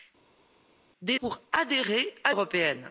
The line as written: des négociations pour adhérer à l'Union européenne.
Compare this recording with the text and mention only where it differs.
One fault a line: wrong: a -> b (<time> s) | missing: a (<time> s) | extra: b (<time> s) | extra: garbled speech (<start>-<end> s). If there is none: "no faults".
missing: négociations (1.2 s)
missing: l'Union (2.3 s)